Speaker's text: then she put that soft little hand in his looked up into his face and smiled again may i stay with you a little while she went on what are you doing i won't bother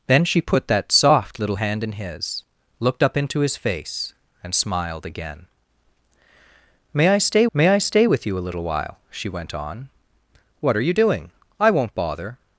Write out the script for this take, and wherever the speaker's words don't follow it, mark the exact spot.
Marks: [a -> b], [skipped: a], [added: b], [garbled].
then she put that soft little hand in his looked up into his face and smiled again may i stay [added: may i stay] with you a little while she went on what are you doing i won't bother